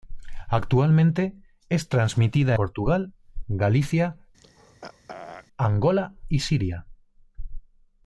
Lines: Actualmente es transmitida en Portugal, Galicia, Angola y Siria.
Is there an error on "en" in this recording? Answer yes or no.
yes